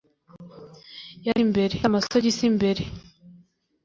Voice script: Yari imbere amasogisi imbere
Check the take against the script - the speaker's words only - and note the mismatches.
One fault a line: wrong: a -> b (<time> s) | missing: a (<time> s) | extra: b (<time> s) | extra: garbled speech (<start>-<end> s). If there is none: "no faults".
no faults